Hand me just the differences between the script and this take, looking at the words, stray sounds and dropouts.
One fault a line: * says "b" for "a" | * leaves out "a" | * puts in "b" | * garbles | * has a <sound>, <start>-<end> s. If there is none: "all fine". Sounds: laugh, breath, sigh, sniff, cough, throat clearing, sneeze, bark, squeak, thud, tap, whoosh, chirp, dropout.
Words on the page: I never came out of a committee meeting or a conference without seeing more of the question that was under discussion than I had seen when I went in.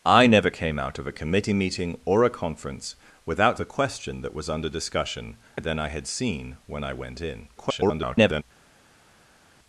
* leaves out "seeing more of"
* garbles